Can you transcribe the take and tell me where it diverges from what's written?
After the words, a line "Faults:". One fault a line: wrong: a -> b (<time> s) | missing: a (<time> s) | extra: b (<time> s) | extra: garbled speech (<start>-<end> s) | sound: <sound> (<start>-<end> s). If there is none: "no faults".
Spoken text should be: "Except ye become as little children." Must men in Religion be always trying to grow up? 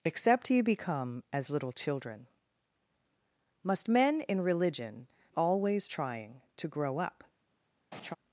"Except ye become as little children." Must men in Religion always trying to grow up?
Faults:
missing: be (5.1 s)
sound: laugh (7.9-8.2 s)